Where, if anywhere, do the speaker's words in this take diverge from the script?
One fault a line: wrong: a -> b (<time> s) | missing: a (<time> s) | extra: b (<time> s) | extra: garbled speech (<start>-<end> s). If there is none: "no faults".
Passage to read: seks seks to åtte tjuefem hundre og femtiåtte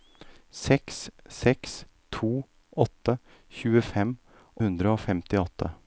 no faults